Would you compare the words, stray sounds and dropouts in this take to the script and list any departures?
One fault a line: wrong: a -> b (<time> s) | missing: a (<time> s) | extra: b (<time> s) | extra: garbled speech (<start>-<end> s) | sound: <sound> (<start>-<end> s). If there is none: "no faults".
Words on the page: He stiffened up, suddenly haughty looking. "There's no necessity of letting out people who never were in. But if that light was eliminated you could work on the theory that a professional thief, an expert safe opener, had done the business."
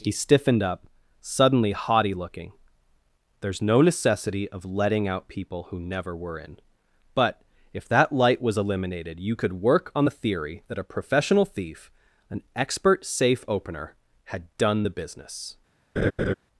sound: laugh (16.0-16.3 s)